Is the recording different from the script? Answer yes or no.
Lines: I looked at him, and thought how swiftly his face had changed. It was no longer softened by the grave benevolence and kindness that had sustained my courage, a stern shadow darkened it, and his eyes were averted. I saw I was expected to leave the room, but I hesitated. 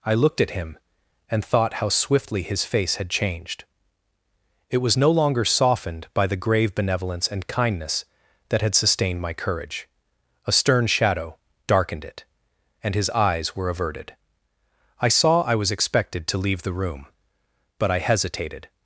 no